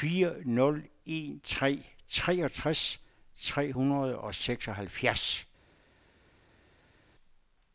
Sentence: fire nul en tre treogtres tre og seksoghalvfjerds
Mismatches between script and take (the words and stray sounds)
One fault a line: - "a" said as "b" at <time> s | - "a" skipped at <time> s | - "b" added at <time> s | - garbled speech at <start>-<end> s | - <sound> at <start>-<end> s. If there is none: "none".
- "hundrede" added at 3.7 s